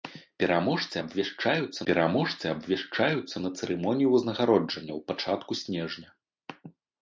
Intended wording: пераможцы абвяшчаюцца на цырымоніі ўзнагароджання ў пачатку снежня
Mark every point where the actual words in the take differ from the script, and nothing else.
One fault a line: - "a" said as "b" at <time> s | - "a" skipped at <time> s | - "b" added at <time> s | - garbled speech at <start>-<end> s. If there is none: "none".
- "пераможцы абвяшчаюцца" added at 1.9 s